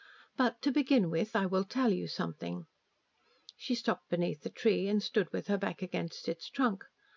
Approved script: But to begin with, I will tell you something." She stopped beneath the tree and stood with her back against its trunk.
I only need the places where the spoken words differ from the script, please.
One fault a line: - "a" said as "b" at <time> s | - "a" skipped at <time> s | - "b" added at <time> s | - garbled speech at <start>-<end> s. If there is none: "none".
none